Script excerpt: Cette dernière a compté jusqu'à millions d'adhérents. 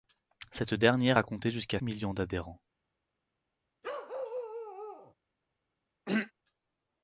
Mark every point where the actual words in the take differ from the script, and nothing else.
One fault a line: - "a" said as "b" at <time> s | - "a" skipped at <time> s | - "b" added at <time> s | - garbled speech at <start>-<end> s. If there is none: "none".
none